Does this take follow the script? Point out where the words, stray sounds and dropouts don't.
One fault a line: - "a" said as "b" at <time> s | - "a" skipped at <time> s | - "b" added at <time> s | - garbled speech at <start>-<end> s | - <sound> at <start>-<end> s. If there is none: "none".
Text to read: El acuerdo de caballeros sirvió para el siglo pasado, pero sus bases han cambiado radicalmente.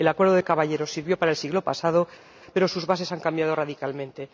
none